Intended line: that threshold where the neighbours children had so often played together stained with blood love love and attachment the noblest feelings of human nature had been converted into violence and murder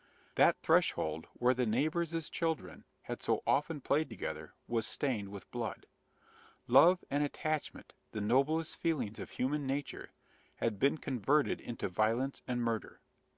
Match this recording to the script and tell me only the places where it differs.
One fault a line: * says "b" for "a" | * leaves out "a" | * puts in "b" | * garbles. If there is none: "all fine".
* puts in "was"
* leaves out "love"